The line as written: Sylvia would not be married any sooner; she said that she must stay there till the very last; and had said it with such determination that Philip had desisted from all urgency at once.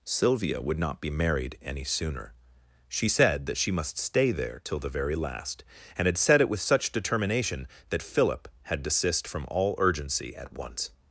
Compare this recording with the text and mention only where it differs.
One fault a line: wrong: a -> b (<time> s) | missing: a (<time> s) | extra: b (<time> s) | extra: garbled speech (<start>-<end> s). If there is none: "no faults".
wrong: desisted -> desist (8.8 s)